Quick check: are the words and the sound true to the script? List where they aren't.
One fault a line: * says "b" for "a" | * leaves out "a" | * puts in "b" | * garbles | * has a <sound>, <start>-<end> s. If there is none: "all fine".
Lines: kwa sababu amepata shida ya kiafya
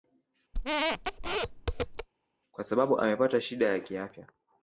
* has a squeak, 0.5-2.1 s